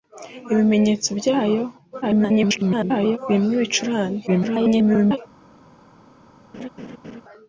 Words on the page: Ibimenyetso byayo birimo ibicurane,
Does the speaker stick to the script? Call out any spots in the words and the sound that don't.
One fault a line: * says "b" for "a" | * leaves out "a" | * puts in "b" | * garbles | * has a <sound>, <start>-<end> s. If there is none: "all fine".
* garbles
* garbles
* has a laugh, 6.5-7.2 s